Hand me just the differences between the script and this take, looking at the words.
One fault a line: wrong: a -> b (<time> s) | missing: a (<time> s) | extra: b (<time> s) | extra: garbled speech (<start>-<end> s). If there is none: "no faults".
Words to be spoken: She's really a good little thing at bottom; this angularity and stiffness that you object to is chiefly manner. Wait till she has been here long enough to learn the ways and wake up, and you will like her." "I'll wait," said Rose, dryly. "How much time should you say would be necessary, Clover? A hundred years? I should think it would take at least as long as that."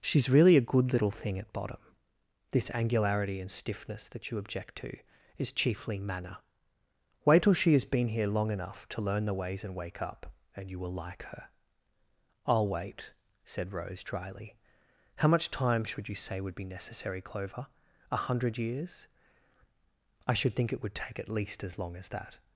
no faults